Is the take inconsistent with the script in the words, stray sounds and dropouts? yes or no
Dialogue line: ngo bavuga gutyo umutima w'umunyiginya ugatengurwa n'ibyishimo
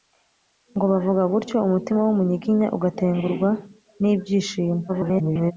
yes